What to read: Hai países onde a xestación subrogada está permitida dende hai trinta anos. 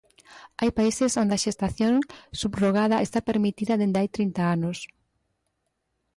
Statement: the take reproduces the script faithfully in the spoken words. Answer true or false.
true